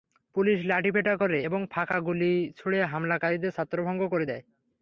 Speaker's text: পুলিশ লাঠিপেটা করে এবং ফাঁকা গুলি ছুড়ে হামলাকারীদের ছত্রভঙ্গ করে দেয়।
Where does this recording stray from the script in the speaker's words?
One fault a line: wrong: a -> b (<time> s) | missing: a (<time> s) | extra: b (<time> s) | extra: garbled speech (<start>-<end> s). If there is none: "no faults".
no faults